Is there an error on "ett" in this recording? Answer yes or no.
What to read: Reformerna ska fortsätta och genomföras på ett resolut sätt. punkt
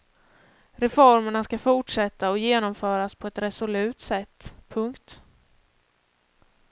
no